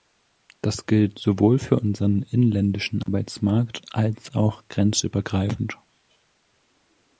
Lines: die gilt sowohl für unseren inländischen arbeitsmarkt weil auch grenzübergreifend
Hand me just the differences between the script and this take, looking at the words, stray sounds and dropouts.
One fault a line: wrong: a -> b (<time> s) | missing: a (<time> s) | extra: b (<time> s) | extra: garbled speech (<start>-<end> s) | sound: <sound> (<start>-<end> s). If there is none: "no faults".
wrong: die -> das (0.6 s)
wrong: weil -> als (3.9 s)